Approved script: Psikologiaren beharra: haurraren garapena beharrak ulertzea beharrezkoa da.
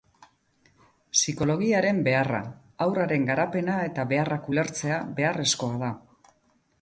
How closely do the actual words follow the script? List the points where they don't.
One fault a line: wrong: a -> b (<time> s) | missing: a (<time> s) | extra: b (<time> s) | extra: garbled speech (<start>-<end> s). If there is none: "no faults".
extra: eta (3.9 s)